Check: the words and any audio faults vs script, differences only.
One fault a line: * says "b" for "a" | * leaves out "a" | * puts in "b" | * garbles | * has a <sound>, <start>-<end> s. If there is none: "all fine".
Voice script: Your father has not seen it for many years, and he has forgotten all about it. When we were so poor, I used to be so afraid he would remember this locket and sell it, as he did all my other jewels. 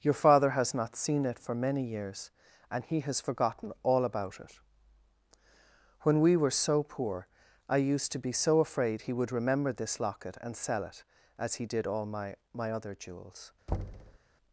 * puts in "my"
* has a thud, 13.7-14.2 s